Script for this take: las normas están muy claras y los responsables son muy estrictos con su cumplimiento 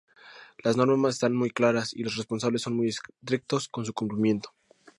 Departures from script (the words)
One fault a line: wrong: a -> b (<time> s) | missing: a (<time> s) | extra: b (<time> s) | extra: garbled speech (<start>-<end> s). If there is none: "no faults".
no faults